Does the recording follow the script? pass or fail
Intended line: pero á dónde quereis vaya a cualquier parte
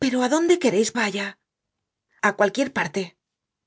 pass